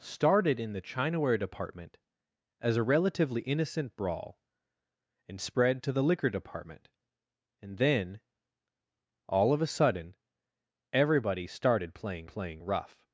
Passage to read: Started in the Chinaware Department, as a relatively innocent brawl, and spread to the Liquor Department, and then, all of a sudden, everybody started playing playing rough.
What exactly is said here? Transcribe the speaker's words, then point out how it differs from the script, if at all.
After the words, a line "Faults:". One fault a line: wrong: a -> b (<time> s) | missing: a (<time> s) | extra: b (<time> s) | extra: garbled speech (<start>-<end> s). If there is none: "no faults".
Started in the Chinaware Department, as a relatively innocent brawl, and spread to the Liquor Department, and then, all of a sudden, everybody started playing playing rough.
Faults:
no faults